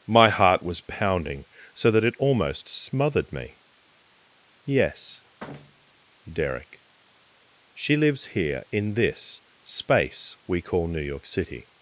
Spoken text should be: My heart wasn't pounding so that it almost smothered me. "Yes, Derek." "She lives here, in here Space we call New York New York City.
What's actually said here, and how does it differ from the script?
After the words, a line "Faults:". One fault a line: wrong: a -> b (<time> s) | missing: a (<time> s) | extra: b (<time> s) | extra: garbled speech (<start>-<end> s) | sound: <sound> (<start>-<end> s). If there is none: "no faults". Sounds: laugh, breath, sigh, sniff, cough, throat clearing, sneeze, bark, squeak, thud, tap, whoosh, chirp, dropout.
My heart was pounding so that it almost smothered me. "Yes, Derek." "She lives here, in this Space we call New York City.
Faults:
wrong: wasn't -> was (0.6 s)
sound: thud (5.4-6.0 s)
wrong: here -> this (8.9 s)
missing: New York (11.2 s)